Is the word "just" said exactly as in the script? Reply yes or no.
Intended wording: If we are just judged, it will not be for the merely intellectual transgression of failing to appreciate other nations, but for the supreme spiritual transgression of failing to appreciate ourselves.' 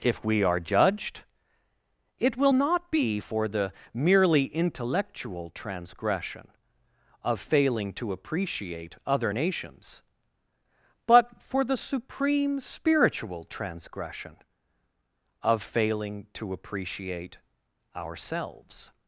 no